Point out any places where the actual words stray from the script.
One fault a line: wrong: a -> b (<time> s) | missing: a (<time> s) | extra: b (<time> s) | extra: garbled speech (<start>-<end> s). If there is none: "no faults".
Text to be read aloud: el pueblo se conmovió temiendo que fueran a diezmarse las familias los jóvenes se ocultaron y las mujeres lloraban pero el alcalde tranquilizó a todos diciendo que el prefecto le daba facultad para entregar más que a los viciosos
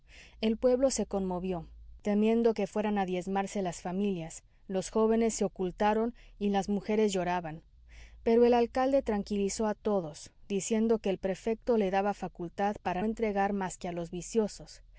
no faults